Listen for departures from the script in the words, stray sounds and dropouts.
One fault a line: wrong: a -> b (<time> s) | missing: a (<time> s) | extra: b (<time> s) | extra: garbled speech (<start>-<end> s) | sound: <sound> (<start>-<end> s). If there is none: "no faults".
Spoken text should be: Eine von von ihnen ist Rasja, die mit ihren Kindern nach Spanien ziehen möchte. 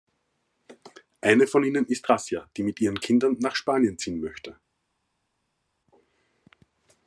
missing: von (1.6 s)